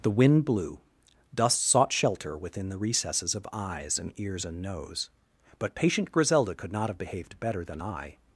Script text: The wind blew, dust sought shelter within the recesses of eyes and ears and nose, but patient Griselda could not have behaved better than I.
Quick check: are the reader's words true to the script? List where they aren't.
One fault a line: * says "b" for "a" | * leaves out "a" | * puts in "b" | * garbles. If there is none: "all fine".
all fine